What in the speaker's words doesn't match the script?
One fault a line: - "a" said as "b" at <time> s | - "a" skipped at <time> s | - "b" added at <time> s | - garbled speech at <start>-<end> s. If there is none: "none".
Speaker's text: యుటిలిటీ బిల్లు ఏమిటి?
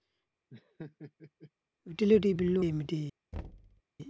none